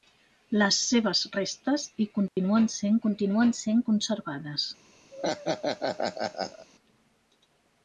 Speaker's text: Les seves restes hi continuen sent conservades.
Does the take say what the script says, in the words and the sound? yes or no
no